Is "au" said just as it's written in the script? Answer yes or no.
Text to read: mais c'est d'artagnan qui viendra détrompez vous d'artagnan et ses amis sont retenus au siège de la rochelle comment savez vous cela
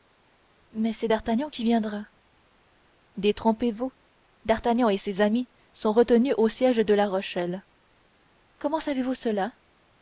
yes